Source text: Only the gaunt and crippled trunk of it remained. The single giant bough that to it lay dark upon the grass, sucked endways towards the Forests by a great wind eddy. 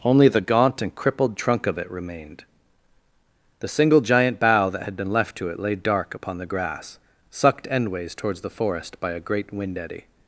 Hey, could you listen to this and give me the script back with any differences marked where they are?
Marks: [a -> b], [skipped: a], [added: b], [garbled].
Only the gaunt and crippled trunk of it remained. The single giant bough that [added: had been left] to it lay dark upon the grass, sucked endways towards the [Forests -> Forest] by a great wind eddy.